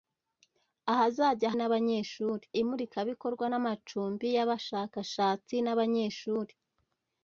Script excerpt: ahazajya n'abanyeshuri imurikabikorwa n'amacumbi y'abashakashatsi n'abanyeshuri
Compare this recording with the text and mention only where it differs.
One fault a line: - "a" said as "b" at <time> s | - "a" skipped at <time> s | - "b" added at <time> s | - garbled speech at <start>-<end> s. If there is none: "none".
none